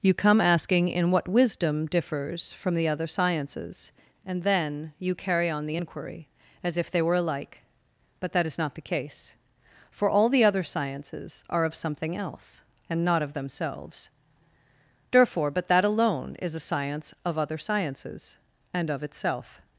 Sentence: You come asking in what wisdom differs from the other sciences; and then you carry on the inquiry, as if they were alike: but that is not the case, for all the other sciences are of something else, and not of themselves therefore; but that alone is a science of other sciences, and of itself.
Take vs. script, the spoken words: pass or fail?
pass